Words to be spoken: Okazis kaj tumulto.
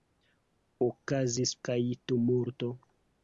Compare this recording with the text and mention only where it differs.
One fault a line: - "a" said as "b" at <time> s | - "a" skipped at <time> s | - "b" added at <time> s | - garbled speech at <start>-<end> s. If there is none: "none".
none